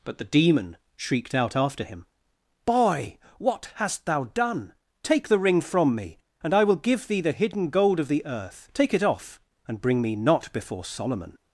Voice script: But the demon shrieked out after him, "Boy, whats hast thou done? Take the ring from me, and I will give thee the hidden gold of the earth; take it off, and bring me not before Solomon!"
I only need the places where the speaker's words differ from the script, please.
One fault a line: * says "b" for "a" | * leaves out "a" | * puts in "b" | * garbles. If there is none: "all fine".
* says "what" for "whats"